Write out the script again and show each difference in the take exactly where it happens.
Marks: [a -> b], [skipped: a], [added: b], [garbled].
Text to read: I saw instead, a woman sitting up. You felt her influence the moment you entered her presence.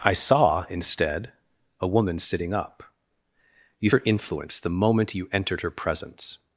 I saw instead, a woman sitting up. You [skipped: felt] her influence the moment you entered her presence.